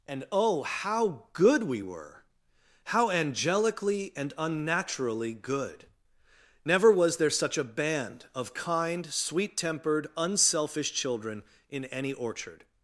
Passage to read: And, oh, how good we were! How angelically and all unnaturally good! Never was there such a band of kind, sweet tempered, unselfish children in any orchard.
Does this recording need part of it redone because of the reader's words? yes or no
yes